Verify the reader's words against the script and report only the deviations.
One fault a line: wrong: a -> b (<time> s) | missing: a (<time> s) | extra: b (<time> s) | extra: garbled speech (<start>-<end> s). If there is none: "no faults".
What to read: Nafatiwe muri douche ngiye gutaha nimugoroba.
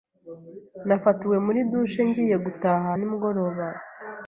no faults